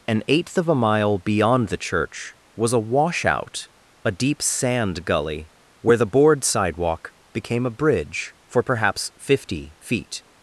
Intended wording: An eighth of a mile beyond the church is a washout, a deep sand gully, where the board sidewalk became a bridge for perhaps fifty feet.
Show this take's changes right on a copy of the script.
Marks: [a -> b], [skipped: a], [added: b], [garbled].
An eighth of a mile beyond the church [is -> was] a washout, a deep sand gully, where the board sidewalk became a bridge for perhaps fifty feet.